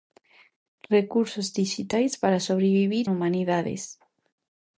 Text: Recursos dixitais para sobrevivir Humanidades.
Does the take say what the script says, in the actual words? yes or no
yes